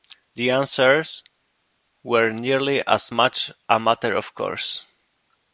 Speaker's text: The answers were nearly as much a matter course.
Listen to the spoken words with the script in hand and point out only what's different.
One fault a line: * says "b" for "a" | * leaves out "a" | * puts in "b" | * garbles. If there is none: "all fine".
* puts in "of"